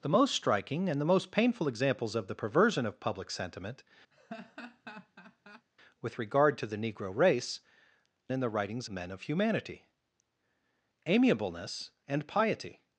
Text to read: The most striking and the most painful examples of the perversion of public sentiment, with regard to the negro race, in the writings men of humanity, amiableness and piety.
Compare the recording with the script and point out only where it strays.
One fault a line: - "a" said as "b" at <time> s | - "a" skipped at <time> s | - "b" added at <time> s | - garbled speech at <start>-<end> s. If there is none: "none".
none